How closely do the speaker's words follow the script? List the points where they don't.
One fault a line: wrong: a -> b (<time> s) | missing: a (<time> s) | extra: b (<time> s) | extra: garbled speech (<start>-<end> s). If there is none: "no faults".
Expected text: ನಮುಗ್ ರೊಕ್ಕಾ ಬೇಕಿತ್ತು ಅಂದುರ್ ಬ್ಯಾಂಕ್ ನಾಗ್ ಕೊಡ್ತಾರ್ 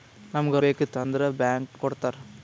missing: ರೊಕ್ಕಾ (0.6 s)
missing: ನಾಗ್ (1.7 s)